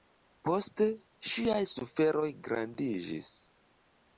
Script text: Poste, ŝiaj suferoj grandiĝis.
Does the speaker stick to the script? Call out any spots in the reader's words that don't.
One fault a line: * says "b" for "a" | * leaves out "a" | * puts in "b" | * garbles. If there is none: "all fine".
all fine